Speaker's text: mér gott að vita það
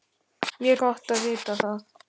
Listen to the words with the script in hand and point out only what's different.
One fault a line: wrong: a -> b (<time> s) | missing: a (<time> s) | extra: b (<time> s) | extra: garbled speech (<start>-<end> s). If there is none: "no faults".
no faults